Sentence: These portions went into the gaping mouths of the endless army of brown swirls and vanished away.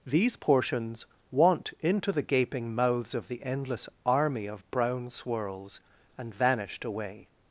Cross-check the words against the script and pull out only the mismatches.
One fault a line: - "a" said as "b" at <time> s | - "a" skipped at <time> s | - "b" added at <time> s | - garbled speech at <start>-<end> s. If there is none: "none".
- "went" said as "want" at 1.3 s